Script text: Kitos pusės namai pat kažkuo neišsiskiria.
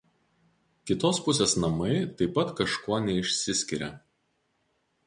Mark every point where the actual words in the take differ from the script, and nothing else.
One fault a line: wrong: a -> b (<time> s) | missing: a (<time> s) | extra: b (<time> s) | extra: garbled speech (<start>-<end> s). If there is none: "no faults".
extra: taip (2.2 s)